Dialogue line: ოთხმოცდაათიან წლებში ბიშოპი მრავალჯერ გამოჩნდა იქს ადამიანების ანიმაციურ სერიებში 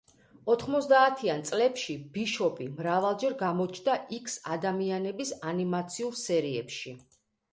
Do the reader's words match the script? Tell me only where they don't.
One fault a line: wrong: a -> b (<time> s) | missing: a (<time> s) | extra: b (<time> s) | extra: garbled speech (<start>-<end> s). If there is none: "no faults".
no faults